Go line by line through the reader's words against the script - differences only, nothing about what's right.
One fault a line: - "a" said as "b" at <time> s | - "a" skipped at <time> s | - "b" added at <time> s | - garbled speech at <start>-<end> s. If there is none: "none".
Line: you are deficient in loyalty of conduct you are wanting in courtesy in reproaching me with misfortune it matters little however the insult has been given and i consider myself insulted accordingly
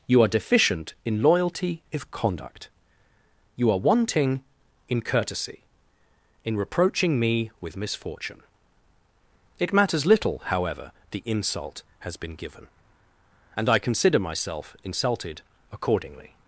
- "of" said as "if" at 1.9 s